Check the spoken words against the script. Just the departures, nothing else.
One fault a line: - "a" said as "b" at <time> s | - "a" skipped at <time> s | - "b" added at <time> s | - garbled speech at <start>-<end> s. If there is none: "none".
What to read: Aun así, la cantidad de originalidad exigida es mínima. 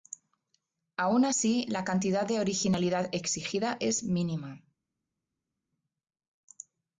none